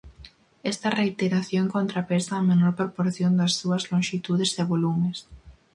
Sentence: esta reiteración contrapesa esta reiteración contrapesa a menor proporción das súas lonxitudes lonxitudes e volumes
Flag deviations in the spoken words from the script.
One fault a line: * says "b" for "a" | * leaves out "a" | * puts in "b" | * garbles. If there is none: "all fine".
* leaves out "esta reiteración contrapesa"
* leaves out "lonxitudes"